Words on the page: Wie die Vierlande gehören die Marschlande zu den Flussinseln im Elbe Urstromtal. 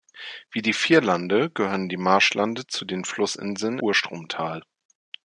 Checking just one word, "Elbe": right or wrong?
wrong